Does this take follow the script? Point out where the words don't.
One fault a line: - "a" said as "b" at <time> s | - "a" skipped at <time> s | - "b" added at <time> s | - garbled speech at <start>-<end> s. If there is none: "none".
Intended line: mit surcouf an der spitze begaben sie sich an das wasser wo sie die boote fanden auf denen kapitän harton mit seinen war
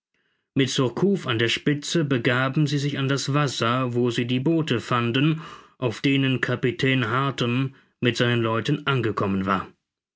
- "leuten angekommen" added at 8.4 s